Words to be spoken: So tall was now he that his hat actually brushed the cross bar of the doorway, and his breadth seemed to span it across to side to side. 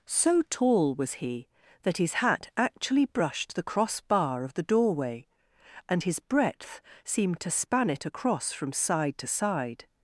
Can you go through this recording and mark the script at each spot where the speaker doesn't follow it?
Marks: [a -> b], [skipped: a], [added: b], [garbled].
So tall was [skipped: now] he that his hat actually brushed the cross bar of the doorway, and his breadth seemed to span it across [to -> from] side to side.